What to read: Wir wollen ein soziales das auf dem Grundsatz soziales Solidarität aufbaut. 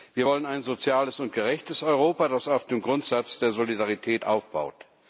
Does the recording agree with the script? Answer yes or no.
no